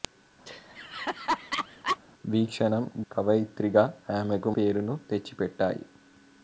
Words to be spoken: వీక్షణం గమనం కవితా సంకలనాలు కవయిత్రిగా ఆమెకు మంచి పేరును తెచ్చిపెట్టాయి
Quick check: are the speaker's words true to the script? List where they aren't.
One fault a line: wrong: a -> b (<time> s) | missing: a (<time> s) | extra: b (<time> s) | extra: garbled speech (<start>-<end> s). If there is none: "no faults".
missing: గమనం కవితా సంకలనాలు (2.8 s)
missing: మంచి (4.5 s)